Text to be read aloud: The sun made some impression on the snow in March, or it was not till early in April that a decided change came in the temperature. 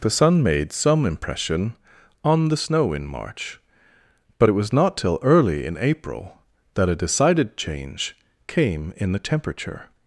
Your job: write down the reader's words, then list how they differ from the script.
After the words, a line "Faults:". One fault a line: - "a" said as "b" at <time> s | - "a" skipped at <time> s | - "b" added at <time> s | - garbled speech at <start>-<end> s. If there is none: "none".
The sun made some impression on the snow in March, but it was not till early in April that a decided change came in the temperature.
Faults:
- "or" said as "but" at 4.4 s